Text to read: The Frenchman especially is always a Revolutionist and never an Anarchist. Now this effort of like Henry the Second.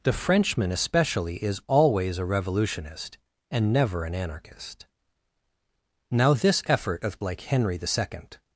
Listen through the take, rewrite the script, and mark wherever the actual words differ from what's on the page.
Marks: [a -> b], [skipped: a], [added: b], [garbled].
The Frenchman especially is always a Revolutionist and never an Anarchist. Now this effort of like Henry the Second.